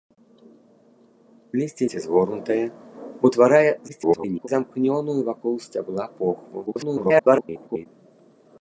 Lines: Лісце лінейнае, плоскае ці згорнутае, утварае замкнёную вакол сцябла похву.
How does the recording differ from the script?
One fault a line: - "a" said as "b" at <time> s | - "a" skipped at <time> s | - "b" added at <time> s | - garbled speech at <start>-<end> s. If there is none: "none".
- "лінейнае плоскае" skipped at 1.9 s
- garbled speech at 3.9-4.5 s
- garbled speech at 6.7-7.9 s